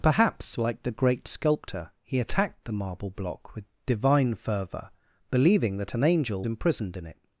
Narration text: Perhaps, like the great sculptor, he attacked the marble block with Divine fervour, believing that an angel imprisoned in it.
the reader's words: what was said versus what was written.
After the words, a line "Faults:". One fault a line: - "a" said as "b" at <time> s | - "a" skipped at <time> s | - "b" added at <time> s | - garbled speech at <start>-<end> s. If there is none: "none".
Perhaps, like the great sculptor, he attacked the marble block with Divine fervour, believing that an angel imprisoned in it.
Faults:
none